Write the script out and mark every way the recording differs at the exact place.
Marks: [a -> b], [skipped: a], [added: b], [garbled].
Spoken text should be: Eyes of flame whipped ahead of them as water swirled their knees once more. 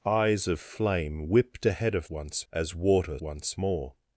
Eyes of flame whipped ahead of [them -> once] as water [skipped: swirled their knees] once more.